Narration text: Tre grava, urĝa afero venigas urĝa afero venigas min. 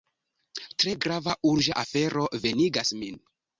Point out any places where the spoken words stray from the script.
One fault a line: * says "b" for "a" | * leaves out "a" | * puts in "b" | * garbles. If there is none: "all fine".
* leaves out "urĝa afero venigas"